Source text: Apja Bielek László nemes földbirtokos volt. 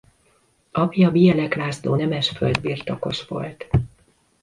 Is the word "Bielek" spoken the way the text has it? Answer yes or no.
yes